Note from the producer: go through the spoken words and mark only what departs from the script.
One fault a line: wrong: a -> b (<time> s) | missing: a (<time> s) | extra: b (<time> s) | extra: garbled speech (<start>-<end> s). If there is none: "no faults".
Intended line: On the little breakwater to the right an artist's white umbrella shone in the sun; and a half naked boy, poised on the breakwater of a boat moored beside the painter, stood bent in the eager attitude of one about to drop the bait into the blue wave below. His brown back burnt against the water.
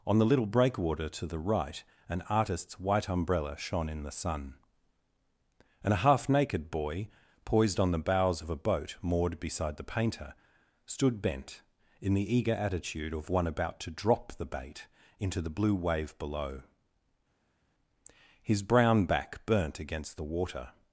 wrong: breakwater -> bows (8.0 s)